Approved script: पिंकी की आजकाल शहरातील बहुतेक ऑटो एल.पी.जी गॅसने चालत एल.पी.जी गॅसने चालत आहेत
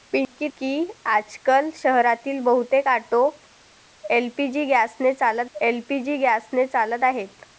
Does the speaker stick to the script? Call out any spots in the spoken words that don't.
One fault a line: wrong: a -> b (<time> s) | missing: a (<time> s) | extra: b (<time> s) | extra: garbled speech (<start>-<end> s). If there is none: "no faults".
no faults